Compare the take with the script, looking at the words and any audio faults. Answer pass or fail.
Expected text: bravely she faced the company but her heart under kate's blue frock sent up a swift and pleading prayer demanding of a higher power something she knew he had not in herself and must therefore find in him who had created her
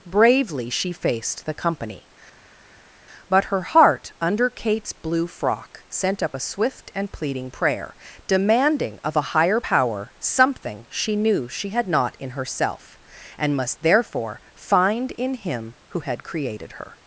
fail